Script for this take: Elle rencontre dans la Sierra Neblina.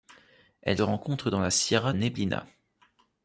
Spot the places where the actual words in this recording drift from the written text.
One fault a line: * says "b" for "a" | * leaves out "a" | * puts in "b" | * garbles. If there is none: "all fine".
all fine